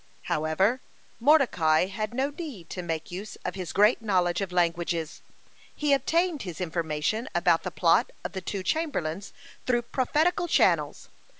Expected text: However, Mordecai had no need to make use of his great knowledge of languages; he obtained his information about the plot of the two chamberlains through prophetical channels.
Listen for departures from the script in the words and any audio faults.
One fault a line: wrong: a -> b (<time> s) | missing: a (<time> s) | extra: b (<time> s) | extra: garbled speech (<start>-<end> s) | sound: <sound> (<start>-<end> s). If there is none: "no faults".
no faults